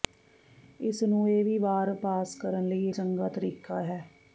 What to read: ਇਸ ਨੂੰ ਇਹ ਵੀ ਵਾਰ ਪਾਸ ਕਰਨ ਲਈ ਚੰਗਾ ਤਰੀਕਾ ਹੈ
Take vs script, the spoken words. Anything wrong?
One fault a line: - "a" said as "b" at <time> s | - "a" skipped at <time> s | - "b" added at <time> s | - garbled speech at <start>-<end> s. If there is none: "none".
none